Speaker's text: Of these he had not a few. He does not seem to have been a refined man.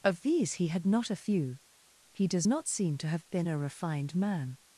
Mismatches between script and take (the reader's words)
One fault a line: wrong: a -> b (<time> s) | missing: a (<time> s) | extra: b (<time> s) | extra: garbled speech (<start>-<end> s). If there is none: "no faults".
no faults